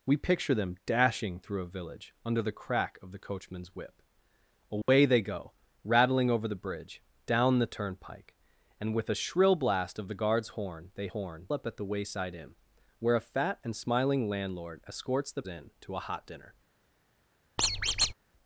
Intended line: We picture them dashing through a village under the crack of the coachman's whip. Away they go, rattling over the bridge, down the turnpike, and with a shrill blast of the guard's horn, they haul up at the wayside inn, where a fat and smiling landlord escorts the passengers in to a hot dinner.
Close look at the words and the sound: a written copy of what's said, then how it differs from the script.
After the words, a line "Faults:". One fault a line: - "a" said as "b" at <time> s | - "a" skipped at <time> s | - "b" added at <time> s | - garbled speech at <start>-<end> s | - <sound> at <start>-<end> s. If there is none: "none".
We picture them dashing through a village under the crack of the coachman's whip. Away they go, rattling over the bridge, down the turnpike, and with a shrill blast of the guard's horn, they horn up at the wayside inn, where a fat and smiling landlord escorts the in to a hot dinner.
Faults:
- dropout at 4.8-4.9 s
- "haul" said as "horn" at 11.1 s
- "passengers" skipped at 15.4 s
- squeak at 17.6-18.1 s